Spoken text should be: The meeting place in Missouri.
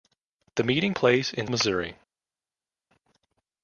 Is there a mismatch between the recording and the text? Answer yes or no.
no